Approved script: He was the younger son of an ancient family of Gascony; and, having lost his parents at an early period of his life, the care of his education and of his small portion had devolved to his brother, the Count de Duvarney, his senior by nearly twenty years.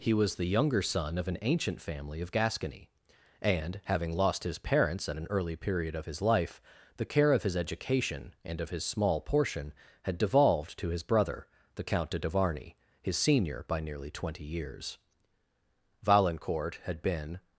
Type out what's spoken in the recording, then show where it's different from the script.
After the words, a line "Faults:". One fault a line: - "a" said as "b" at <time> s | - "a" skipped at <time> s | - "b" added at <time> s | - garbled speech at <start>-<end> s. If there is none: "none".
He was the younger son of an ancient family of Gascony; and, having lost his parents at an early period of his life, the care of his education and of his small portion had devolved to his brother, the Count de Duvarney, his senior by nearly twenty years. Valancourt had been
Faults:
- "Valancourt had been" added at 16.0 s